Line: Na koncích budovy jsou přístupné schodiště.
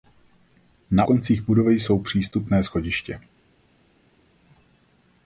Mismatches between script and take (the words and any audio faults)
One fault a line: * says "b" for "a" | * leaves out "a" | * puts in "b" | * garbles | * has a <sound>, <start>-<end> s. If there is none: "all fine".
all fine